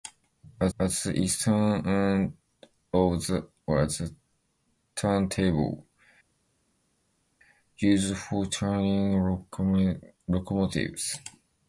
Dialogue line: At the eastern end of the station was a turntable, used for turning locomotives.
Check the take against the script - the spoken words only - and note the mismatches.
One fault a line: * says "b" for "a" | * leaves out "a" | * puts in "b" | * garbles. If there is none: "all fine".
* puts in "at"
* leaves out "station"